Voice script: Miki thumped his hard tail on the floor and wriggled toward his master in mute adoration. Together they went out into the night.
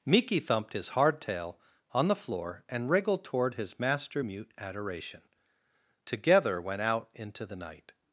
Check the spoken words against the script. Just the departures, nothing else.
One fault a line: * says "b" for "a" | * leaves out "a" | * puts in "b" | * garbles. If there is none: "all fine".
* leaves out "in"
* leaves out "they"